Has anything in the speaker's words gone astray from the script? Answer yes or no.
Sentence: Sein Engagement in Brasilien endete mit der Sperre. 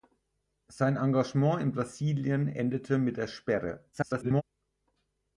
yes